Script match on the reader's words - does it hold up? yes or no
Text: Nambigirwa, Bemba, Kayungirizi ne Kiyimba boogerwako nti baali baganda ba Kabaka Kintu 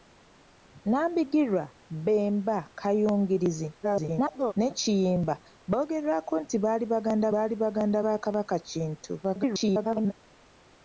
no